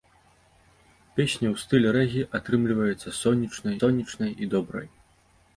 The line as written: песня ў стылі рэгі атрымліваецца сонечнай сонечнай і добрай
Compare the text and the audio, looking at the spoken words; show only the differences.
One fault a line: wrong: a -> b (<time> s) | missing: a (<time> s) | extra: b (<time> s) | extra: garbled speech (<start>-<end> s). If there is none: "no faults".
no faults